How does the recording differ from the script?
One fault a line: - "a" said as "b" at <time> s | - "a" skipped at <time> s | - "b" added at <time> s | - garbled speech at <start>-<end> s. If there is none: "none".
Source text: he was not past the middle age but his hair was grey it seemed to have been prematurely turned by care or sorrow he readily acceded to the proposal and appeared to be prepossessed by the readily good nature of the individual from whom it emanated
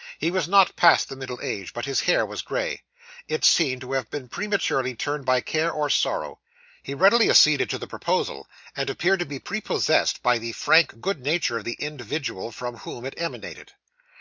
- "readily" said as "frank" at 10.5 s